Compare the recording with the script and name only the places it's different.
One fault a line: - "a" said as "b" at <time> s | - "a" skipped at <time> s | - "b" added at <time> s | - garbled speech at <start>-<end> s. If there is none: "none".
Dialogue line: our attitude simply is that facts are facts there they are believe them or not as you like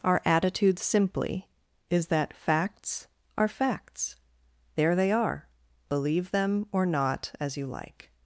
none